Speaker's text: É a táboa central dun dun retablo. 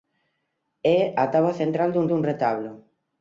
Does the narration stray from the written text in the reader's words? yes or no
no